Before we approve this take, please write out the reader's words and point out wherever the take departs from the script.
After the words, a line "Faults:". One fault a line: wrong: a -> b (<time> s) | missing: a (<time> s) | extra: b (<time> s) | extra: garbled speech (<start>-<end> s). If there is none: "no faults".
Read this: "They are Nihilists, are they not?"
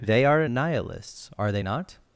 "They are Nihilists, are they not?"
Faults:
no faults